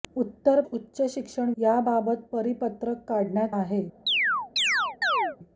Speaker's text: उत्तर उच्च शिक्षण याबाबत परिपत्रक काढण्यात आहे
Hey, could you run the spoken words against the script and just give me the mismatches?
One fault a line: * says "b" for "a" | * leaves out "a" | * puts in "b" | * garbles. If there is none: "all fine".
all fine